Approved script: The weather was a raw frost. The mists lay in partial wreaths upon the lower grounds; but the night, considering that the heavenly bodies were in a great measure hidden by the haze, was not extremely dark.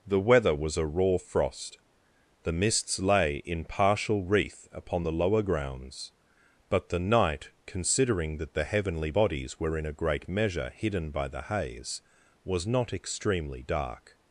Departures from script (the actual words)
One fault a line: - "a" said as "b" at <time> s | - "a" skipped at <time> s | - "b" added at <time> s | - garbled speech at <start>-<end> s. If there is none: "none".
- "wreaths" said as "wreath" at 4.2 s